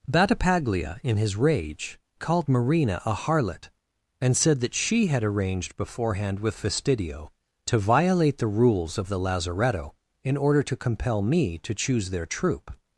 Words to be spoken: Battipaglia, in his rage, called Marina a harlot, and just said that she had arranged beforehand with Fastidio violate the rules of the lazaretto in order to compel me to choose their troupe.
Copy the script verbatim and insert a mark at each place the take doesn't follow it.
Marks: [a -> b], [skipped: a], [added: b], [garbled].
Battipaglia, in his rage, called Marina a harlot, and [skipped: just] said that she had arranged beforehand with Fastidio [added: to] violate the rules of the lazaretto in order to compel me to choose their troupe.